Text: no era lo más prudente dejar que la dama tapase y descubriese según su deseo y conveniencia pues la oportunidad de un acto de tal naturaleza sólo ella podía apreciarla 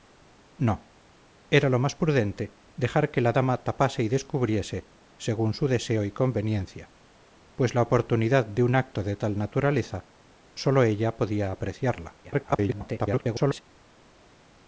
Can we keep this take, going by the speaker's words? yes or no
no